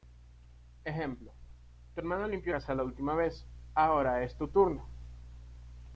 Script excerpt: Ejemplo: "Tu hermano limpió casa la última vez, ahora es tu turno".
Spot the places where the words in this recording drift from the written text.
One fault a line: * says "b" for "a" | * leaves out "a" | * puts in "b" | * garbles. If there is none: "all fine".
all fine